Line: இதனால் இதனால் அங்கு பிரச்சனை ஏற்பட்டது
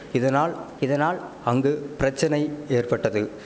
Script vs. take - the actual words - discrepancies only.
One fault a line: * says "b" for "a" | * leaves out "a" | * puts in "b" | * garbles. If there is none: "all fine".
all fine